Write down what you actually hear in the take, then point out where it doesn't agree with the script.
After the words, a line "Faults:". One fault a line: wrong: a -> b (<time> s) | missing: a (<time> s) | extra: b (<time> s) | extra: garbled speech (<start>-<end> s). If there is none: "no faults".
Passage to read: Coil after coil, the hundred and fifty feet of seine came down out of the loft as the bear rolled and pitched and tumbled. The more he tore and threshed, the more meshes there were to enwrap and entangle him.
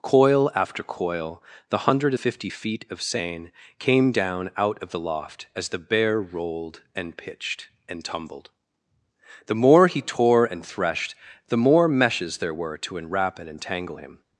Coil after coil, the hundred fifty feet of seine came down out of the loft as the bear rolled and pitched and tumbled. The more he tore and threshed, the more meshes there were to enwrap and entangle him.
Faults:
missing: and (2.1 s)